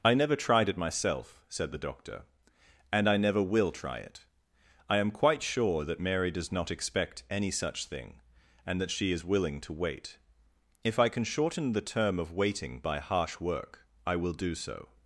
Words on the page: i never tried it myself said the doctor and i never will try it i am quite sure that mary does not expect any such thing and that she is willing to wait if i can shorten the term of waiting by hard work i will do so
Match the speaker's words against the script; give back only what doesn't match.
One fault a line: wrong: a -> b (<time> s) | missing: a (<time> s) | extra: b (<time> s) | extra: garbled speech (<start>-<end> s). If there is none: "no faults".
wrong: hard -> harsh (13.0 s)